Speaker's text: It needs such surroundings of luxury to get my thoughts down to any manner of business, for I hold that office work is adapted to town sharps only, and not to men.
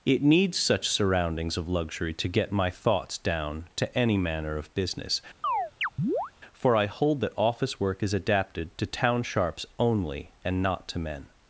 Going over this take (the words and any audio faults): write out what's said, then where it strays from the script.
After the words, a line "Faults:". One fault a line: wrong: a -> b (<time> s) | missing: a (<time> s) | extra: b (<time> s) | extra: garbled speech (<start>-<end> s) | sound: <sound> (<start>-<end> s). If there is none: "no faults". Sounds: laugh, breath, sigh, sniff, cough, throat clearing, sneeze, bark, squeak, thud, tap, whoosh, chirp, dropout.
It needs such surroundings of luxury to get my thoughts down to any manner of business, for I hold that office work is adapted to town sharps only, and not to men.
Faults:
sound: chirp (5.4-6.3 s)